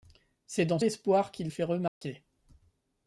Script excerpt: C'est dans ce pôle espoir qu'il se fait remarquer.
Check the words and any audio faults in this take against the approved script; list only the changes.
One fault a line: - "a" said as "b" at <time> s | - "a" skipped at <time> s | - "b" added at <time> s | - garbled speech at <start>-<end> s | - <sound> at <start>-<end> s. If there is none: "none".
- "ce pôle" skipped at 0.8 s
- "se" skipped at 1.5 s
- dropout at 1.9-2.0 s